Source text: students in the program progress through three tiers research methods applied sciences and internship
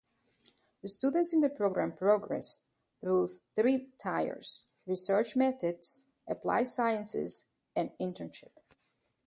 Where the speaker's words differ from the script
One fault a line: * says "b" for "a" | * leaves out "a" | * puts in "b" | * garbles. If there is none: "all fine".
all fine